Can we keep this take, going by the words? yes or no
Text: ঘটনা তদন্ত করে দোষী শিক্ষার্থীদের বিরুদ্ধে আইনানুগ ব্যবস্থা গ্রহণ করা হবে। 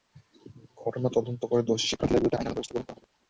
yes